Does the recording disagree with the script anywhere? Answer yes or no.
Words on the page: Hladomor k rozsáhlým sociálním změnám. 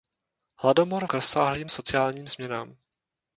no